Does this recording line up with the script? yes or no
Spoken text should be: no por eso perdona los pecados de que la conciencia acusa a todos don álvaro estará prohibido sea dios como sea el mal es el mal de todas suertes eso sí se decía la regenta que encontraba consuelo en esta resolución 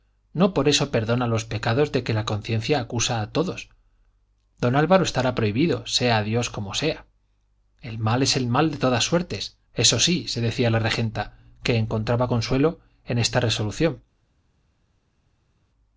yes